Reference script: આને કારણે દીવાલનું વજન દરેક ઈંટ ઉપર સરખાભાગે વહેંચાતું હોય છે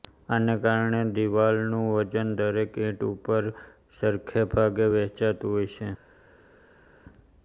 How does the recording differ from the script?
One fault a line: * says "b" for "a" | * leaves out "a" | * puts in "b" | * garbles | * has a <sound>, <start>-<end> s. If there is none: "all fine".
all fine